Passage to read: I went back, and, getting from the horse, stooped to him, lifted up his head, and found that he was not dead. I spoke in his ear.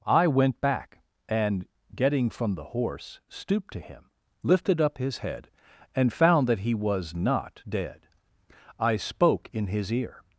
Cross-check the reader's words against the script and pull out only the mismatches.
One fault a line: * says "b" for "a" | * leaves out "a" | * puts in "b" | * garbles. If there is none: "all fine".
all fine